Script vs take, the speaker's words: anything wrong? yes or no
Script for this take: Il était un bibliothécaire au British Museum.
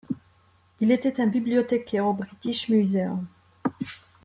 no